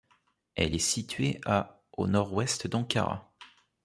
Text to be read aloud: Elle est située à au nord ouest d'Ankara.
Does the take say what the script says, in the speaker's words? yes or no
yes